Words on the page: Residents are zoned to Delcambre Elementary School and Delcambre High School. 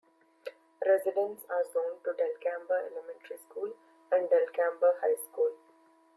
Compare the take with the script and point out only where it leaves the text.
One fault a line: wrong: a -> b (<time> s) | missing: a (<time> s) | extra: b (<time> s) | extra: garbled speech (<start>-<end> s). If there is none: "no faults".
no faults